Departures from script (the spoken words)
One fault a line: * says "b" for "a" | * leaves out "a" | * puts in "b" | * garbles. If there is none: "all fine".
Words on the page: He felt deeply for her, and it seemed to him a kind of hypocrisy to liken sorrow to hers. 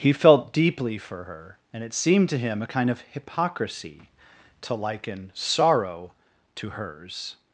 all fine